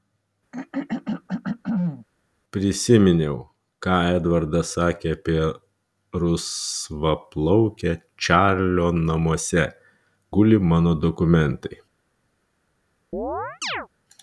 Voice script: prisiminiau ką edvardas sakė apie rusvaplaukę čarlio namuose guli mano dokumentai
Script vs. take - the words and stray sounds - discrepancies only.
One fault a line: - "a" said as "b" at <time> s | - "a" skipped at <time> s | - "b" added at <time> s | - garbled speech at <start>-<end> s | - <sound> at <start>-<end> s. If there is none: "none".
- throat clearing at 0.5-2.1 s
- chirp at 13.1-13.9 s